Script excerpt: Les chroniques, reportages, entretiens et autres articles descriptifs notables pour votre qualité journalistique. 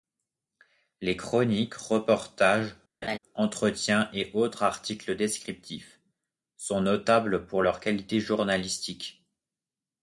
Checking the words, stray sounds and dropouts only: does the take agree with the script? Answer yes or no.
no